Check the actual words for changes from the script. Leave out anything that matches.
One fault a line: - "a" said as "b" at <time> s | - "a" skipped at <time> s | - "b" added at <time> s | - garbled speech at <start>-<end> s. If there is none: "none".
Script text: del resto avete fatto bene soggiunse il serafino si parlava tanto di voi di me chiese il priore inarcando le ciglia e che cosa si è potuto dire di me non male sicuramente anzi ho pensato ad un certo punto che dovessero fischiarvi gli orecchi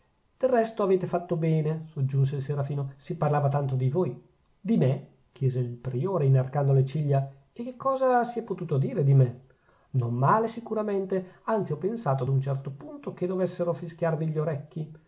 none